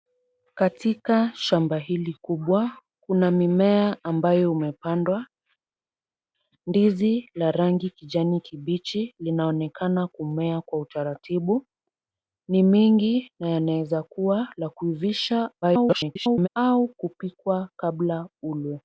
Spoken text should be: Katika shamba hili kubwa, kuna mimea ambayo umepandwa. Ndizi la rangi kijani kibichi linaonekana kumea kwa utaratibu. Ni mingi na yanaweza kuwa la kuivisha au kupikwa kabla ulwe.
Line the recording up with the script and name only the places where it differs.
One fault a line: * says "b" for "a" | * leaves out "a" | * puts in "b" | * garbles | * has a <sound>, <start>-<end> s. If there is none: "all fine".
* garbles